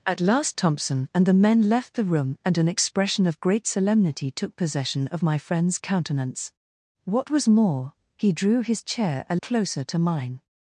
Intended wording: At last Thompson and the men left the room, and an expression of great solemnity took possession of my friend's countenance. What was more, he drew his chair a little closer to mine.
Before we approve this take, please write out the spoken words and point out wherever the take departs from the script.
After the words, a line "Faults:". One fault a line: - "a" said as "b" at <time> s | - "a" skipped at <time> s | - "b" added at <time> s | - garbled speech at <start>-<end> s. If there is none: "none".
At last Thompson and the men left the room, and an expression of great solemnity took possession of my friend's countenance. What was more, he drew his chair a closer to mine.
Faults:
- "little" skipped at 9.4 s